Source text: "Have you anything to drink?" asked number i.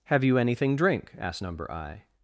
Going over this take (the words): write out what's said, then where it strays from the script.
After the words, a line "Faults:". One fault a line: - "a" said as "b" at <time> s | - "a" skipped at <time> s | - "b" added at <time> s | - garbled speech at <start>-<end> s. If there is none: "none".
"Have you anything drink?" asked number i.
Faults:
- "to" skipped at 0.8 s